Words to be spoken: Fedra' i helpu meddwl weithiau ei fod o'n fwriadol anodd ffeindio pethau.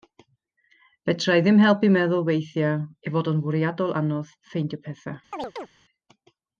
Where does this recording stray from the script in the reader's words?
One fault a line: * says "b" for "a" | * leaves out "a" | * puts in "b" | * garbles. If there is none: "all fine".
* puts in "ddim"